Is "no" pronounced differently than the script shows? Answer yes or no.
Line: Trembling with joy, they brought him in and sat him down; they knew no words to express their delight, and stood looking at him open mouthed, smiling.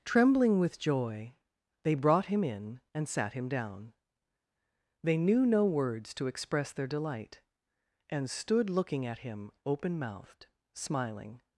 no